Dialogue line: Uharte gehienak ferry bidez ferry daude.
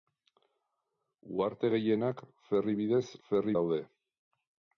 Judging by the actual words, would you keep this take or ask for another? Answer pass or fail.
pass